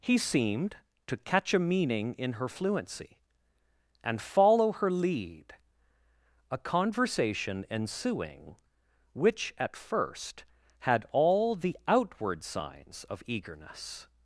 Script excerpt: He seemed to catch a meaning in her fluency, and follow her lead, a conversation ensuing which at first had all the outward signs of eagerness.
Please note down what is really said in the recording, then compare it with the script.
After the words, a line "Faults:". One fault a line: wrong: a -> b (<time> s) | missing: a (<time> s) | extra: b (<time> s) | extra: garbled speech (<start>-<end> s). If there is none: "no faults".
He seemed to catch a meaning in her fluency, and follow her lead, a conversation ensuing which at first had all the outward signs of eagerness.
Faults:
no faults